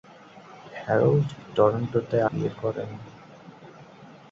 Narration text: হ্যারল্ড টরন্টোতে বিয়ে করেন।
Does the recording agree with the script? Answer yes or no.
yes